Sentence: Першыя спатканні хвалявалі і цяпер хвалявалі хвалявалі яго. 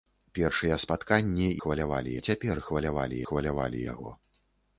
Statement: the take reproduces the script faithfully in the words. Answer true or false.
true